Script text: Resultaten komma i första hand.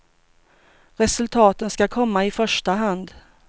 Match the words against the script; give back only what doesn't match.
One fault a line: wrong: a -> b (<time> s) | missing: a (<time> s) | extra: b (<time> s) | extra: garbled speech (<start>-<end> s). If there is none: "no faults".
extra: ska (1.7 s)